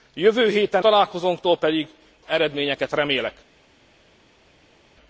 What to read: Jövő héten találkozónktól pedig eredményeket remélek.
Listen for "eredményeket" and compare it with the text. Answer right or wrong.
right